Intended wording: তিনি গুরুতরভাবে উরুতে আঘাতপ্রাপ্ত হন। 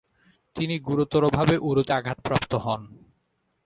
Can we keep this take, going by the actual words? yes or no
yes